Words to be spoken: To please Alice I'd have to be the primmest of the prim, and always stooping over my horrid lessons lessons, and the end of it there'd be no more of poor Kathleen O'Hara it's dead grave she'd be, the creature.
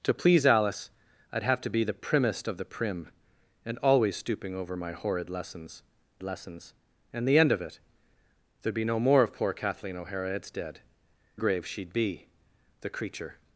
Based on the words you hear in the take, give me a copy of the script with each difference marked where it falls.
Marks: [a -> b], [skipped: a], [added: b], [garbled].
To please Alice I'd have to be the primmest of the prim, and always stooping over my horrid lessons lessons, and the end of it there'd be no more of poor Kathleen O'Hara it's dead grave she'd be, the creature.